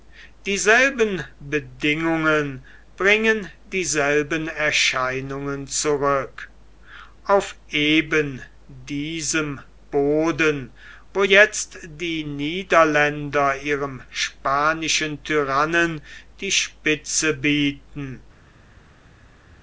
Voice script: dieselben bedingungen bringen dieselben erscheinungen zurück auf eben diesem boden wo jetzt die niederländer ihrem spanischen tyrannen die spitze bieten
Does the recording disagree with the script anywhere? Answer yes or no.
no